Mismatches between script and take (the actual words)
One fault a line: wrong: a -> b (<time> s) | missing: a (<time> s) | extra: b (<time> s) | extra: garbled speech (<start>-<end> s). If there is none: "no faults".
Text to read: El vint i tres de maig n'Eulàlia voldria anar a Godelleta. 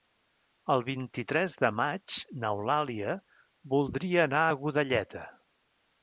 no faults